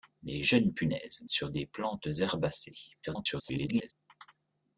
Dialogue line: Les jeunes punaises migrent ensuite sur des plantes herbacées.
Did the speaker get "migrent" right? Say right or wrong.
wrong